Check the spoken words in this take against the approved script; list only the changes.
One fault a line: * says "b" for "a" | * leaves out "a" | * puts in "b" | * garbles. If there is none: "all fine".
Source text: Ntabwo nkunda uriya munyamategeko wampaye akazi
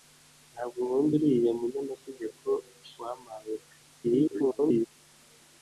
* garbles